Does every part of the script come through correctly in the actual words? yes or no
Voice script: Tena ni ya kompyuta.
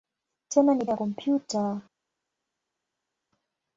yes